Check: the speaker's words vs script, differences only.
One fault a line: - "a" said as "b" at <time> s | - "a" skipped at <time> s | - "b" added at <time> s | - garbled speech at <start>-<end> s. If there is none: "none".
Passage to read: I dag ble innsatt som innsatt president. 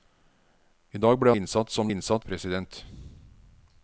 none